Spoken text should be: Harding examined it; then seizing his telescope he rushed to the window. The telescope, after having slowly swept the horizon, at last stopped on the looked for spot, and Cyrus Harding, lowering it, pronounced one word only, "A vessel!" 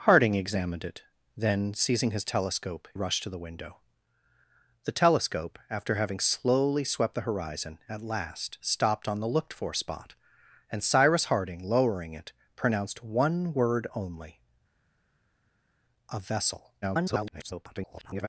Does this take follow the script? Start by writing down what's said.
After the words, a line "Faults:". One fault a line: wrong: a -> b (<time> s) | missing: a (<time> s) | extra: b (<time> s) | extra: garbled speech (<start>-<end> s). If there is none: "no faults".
Harding examined it; then seizing his telescope rushed to the window. The telescope, after having slowly swept the horizon, at last stopped on the looked for spot, and Cyrus Harding, lowering it, pronounced one word only, "A vessel!" [garbled]
Faults:
missing: he (2.9 s)
extra: garbled speech (16.8-18.3 s)